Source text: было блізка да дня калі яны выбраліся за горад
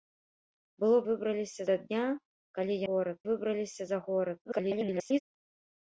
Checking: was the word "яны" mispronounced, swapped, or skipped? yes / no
yes